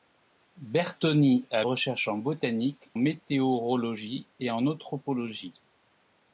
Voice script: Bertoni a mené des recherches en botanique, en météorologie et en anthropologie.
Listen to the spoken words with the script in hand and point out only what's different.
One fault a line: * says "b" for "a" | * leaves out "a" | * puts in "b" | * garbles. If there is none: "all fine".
* leaves out "mené des"
* leaves out "en"